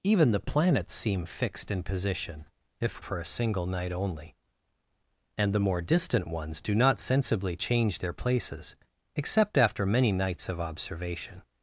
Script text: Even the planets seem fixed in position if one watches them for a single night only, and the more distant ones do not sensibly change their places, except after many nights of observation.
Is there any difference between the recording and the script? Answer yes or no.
yes